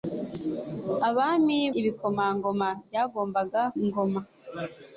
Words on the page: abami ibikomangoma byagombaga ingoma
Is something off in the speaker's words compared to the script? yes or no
no